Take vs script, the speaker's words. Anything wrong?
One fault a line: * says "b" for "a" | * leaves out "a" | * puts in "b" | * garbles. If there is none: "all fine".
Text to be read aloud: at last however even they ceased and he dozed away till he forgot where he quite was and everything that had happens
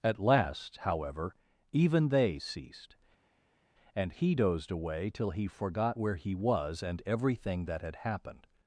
* leaves out "quite"
* says "happened" for "happens"